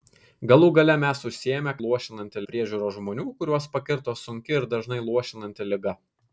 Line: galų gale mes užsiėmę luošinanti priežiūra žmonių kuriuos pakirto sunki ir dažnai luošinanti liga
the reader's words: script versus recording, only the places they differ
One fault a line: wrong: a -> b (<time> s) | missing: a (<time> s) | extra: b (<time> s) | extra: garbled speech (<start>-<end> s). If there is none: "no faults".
no faults